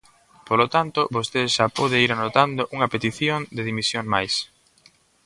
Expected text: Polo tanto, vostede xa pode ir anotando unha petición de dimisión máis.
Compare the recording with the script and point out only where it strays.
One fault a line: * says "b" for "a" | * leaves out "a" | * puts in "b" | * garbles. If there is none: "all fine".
all fine